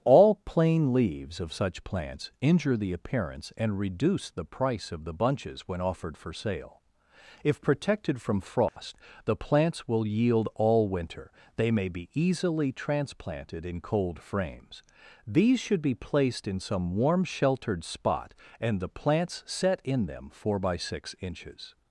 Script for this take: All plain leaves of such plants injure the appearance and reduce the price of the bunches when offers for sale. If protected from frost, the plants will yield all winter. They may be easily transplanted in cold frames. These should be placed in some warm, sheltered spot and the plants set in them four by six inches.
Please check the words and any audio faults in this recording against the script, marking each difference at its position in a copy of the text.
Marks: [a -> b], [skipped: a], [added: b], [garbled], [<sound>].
All plain leaves of such plants injure the appearance and reduce the price of the bunches when [offers -> offered] for sale. If protected from frost, [dropout] the plants will yield all winter. They may be easily transplanted in cold frames. These should be placed in some warm, sheltered spot and the plants set in them four by six inches.